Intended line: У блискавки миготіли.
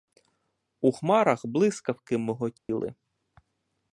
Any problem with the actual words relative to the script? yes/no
yes